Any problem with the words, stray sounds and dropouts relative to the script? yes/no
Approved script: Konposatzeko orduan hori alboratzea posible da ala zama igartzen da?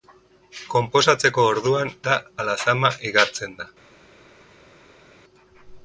yes